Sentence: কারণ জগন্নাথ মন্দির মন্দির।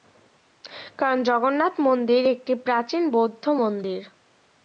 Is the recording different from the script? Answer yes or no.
yes